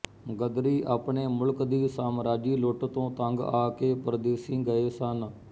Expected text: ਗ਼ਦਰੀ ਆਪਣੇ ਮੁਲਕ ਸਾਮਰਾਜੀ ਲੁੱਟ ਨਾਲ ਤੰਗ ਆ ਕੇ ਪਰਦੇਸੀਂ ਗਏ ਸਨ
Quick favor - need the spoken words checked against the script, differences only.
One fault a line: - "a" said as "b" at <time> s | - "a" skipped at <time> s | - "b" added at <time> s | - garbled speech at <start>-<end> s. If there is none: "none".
- "ਦੀ" added at 1.6 s
- "ਨਾਲ" said as "ਤੋਂ" at 2.9 s